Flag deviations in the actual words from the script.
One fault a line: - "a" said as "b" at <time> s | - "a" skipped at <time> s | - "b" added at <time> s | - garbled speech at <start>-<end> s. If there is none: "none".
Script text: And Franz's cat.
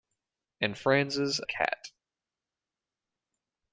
none